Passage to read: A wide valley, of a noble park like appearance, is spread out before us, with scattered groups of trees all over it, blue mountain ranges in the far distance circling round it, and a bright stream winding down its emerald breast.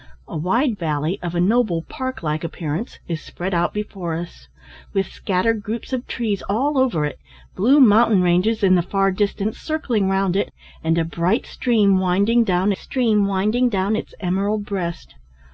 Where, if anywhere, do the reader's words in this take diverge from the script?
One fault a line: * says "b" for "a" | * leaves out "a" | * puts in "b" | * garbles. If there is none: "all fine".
* puts in "stream winding down"